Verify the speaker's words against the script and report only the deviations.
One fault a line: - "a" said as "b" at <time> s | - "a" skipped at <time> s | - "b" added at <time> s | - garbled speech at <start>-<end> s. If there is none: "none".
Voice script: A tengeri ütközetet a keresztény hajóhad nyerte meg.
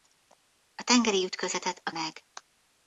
- "keresztény hajóhad nyerte" skipped at 1.9 s